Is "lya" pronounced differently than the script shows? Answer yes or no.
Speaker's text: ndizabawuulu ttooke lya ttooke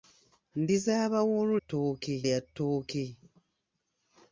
no